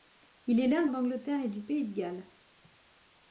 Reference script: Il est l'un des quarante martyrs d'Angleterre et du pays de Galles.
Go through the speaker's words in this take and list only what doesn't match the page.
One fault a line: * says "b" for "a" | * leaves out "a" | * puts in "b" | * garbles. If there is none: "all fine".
* leaves out "des quarante martyrs"